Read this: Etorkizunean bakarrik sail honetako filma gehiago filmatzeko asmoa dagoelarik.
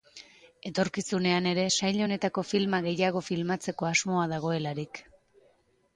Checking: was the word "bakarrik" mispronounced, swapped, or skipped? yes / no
yes